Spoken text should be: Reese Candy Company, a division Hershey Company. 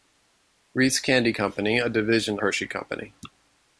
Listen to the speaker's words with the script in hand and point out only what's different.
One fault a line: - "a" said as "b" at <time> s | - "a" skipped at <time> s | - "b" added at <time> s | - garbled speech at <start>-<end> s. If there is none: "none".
none